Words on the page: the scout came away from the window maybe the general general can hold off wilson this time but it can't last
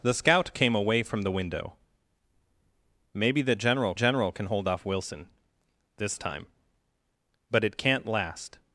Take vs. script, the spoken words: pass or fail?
pass